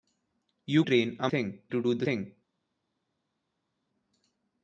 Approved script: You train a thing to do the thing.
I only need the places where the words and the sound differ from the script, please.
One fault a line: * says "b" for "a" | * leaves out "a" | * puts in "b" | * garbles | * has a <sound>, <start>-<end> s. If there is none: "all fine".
all fine